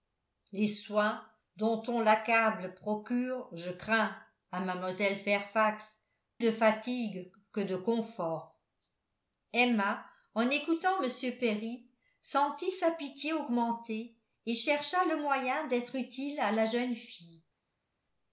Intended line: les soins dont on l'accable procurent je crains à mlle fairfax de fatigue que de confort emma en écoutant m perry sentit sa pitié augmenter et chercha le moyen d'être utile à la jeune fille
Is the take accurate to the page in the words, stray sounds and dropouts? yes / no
yes